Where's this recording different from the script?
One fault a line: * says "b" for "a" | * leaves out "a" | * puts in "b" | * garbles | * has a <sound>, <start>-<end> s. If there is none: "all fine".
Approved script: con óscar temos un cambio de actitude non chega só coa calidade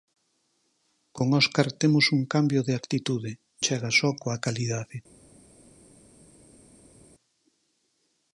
* leaves out "non"